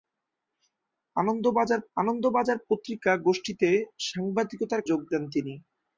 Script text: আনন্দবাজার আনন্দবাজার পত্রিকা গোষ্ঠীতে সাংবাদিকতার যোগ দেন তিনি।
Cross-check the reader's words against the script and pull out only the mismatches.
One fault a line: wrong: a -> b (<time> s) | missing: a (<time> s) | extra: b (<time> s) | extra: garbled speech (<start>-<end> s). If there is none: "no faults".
no faults